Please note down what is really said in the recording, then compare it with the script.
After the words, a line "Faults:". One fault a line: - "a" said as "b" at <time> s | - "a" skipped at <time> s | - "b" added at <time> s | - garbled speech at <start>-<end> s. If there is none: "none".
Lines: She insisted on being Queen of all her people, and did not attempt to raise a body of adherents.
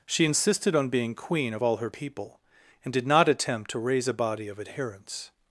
She insisted on being Queen of all her people, and did not attempt to raise a body of adherents.
Faults:
none